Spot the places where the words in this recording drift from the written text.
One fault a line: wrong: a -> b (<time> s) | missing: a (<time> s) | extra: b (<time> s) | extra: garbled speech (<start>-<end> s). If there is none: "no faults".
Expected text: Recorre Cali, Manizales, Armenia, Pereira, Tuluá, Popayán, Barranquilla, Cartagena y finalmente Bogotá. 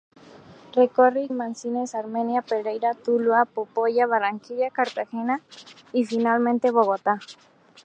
missing: Cali (1.3 s)